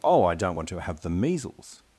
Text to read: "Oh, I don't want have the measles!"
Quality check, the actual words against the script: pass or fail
fail